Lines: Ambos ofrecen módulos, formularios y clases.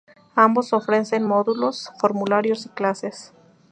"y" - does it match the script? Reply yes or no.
yes